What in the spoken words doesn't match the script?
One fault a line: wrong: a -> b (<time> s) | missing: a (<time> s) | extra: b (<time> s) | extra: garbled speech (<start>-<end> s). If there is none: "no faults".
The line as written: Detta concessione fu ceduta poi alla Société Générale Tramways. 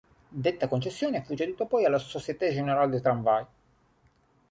extra: des (2.9 s)